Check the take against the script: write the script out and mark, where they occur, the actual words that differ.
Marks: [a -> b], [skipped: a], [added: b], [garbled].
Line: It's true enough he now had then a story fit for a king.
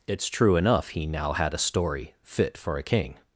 It's true enough he now had [skipped: then] a story fit for a king.